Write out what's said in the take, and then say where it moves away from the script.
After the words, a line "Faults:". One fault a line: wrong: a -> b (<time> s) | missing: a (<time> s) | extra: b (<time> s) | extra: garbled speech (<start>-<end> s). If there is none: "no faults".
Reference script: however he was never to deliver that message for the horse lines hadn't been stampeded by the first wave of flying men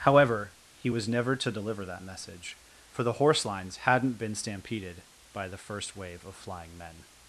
however he was never to deliver that message for the horse lines hadn't been stampeded by the first wave of flying men
Faults:
no faults